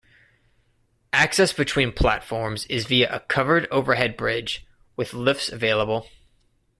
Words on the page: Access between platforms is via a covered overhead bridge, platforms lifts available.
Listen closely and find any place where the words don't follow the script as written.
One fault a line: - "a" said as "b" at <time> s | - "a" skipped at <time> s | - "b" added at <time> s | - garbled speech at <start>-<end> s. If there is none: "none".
- "platforms" said as "with" at 5.0 s